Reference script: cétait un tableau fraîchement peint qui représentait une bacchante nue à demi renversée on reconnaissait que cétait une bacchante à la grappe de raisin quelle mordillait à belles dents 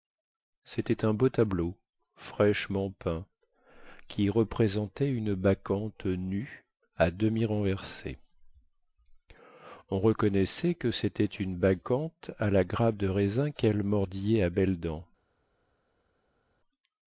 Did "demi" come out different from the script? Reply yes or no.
no